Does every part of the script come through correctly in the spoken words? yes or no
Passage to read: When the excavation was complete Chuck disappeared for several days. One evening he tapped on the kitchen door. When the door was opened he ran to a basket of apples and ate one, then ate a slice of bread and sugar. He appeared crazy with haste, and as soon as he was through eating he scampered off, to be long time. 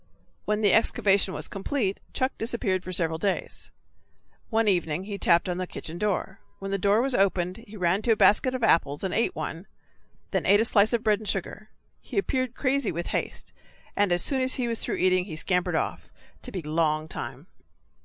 yes